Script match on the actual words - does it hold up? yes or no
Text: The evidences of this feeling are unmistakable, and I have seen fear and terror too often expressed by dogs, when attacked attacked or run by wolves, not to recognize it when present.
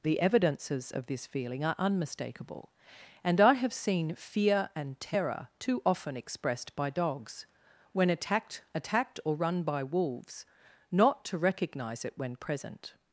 yes